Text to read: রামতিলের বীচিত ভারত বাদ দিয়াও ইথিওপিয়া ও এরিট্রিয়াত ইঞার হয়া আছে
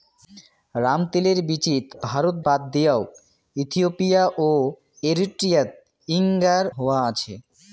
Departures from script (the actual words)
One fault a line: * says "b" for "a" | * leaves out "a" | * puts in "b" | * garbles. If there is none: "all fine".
all fine